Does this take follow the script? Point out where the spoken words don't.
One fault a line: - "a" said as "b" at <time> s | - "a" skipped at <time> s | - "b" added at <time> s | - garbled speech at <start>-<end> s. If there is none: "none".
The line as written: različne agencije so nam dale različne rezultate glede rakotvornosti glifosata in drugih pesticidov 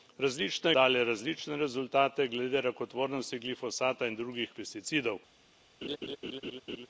- "agencije so nam" skipped at 0.7 s